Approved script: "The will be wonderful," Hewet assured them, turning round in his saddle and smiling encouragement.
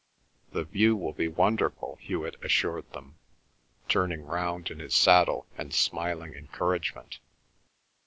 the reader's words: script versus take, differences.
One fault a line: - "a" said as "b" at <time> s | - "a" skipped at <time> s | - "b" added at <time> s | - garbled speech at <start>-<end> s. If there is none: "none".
- "view" added at 0.6 s